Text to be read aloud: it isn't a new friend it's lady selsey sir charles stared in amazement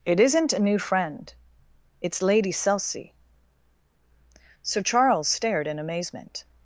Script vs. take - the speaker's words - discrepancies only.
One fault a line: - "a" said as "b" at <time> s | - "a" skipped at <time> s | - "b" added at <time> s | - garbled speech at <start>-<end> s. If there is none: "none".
none